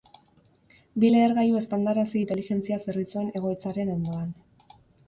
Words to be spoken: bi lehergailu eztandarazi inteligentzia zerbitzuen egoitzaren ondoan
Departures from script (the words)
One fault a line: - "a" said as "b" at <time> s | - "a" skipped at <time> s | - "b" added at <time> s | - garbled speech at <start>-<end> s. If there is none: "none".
none